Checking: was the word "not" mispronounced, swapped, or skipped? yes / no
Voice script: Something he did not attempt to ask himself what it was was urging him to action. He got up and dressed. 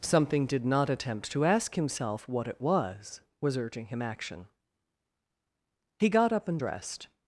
no